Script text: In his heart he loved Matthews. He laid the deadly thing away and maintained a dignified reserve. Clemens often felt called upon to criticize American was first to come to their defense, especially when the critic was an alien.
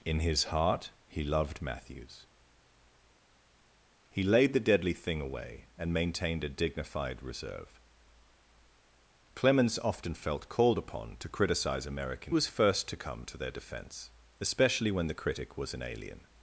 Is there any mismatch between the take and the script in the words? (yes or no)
no